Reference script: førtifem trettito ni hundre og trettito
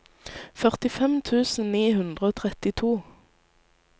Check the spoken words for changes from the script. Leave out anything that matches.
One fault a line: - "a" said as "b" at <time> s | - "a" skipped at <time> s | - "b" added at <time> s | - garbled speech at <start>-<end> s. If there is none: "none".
- "trettito" said as "tusen" at 1.3 s